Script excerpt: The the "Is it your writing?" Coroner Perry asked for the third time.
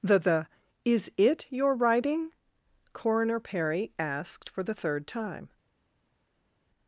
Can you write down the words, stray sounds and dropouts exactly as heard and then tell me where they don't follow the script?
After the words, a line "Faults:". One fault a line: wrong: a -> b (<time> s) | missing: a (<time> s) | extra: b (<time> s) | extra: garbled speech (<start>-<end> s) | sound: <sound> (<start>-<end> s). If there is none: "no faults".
The the "Is it your writing?" Coroner Perry asked for the third time.
Faults:
no faults